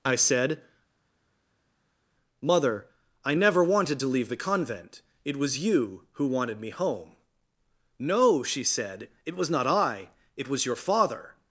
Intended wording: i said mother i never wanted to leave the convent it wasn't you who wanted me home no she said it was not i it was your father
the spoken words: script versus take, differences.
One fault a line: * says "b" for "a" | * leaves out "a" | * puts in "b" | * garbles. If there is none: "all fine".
* says "was" for "wasn't"